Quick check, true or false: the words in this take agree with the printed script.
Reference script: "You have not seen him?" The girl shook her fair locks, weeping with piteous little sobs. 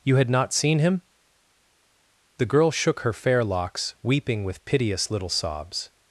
false